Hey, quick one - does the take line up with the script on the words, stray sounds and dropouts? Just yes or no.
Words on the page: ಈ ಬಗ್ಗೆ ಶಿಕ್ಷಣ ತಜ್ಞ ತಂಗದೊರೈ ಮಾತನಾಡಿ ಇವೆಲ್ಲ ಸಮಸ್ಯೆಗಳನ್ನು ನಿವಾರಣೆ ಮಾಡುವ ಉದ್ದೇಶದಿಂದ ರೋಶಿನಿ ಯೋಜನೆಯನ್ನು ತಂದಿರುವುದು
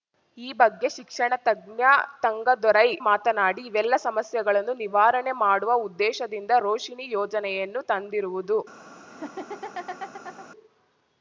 no